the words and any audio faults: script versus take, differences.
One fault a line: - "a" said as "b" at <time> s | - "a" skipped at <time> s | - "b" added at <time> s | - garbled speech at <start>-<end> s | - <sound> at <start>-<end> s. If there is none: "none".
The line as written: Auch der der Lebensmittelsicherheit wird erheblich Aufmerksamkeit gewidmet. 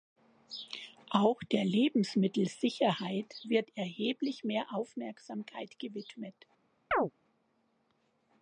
- "der" skipped at 1.6 s
- "mehr" added at 4.5 s
- chirp at 6.9-7.1 s